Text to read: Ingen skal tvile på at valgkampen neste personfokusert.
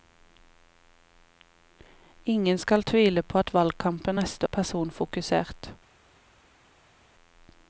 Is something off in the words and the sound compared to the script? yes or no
no